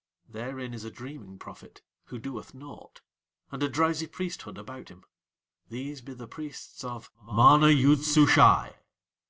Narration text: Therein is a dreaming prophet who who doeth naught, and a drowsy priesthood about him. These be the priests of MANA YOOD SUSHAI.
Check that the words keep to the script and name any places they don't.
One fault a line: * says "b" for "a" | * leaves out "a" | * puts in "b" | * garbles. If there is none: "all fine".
* leaves out "who"